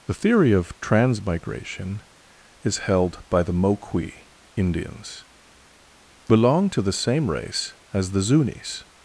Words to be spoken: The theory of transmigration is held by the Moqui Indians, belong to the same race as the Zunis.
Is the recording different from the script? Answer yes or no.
no